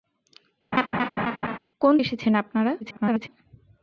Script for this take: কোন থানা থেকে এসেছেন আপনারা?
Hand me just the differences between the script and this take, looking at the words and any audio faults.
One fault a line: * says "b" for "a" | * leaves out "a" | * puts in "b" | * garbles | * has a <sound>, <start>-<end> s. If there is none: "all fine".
* has a laugh, 0.7-1.6 s
* leaves out "থানা থেকে"
* garbles